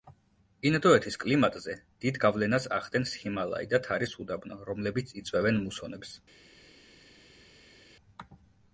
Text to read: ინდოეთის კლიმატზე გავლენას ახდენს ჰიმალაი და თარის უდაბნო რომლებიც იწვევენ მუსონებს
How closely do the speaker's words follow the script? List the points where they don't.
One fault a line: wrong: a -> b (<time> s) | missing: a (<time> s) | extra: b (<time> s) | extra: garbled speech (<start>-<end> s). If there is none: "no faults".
extra: დიდ (2.0 s)